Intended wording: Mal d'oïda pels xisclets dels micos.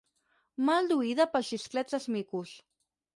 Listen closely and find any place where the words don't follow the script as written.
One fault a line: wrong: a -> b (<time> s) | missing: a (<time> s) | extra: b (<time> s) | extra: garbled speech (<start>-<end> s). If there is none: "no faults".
no faults